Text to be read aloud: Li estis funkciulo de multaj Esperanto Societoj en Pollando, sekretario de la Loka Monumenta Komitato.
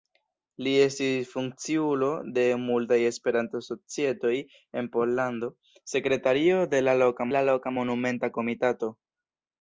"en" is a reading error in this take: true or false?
false